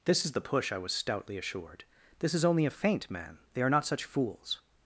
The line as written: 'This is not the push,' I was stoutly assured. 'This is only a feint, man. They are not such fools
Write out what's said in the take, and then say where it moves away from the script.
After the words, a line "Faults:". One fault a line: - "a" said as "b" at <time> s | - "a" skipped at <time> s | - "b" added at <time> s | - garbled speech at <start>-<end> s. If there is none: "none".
'This is the push,' I was stoutly assured. 'This is only a feint, man. They are not such fools
Faults:
- "not" skipped at 0.3 s